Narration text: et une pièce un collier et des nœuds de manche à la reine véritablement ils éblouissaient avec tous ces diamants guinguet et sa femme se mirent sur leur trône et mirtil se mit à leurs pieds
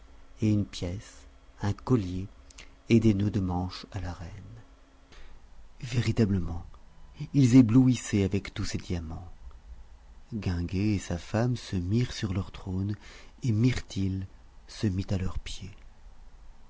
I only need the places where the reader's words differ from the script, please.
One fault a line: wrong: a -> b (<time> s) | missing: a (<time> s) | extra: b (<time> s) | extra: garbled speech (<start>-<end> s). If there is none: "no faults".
no faults